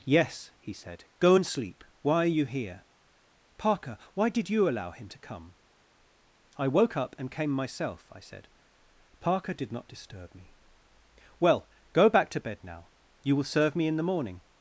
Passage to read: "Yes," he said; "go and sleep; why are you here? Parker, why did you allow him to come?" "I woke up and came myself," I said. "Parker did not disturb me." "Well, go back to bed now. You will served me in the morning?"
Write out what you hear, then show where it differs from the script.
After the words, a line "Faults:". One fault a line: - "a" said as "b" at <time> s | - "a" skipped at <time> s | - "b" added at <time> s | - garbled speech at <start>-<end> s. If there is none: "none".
"Yes," he said; "go and sleep; why are you here? Parker, why did you allow him to come?" "I woke up and came myself," I said. "Parker did not disturb me." "Well, go back to bed now. You will serve me in the morning?"
Faults:
- "served" said as "serve" at 13.5 s